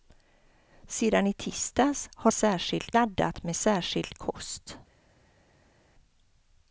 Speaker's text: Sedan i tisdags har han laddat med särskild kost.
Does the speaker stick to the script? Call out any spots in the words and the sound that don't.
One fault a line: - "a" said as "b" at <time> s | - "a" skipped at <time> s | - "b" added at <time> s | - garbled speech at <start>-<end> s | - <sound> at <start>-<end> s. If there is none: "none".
- "han" said as "särskild" at 2.3 s